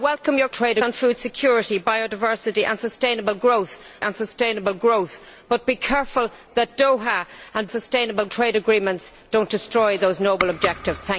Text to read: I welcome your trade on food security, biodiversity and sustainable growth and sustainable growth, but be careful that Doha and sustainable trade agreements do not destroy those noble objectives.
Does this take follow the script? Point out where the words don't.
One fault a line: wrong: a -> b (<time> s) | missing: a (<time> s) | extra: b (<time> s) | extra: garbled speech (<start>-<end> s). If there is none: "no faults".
no faults